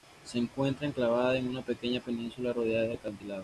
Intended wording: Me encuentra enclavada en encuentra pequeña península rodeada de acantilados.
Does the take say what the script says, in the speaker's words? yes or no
no